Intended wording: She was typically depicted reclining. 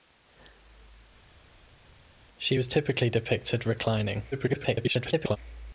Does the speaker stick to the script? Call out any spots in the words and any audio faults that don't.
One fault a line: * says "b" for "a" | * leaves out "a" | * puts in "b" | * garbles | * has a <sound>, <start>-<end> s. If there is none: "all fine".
* garbles